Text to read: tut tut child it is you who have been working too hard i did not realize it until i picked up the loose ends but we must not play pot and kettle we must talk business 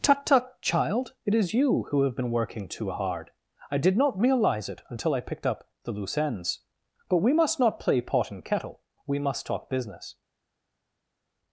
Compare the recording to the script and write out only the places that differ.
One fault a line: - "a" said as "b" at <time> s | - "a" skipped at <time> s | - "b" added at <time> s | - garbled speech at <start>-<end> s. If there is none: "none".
none